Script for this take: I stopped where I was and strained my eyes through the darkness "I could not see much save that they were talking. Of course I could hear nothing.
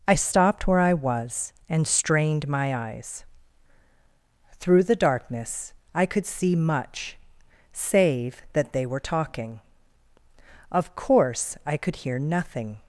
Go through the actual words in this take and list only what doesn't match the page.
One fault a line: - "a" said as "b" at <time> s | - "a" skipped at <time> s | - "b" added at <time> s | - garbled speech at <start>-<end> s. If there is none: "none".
- "not" skipped at 6.3 s